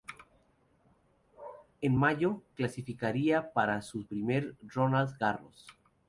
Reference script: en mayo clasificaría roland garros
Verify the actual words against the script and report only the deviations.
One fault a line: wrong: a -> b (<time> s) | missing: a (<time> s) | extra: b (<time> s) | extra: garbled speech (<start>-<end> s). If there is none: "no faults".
extra: para su primer (3.5 s)